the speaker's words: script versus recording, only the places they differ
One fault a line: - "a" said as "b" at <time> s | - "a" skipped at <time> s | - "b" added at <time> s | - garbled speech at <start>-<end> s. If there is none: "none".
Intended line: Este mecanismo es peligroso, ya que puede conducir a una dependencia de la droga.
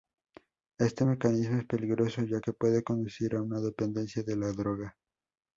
none